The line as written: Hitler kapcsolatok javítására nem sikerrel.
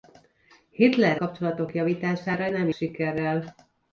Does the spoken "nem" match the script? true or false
true